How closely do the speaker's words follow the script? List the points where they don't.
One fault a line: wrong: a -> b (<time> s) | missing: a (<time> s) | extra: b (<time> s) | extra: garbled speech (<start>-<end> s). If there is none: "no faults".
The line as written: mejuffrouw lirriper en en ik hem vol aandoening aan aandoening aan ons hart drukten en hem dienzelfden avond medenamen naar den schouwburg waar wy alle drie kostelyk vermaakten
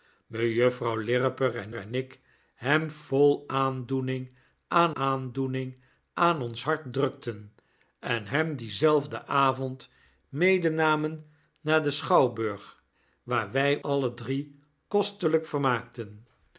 no faults